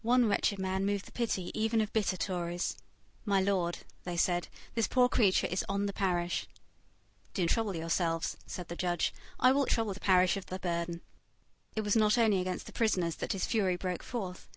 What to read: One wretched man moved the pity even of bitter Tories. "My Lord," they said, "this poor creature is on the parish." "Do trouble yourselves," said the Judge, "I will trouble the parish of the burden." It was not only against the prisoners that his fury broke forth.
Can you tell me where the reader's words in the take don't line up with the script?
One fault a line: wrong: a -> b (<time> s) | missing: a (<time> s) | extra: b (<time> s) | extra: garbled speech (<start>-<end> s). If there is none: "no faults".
no faults